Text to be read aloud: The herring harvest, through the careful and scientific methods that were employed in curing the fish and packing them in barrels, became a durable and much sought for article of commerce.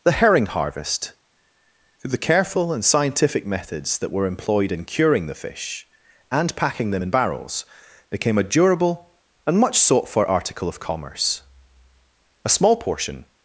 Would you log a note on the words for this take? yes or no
yes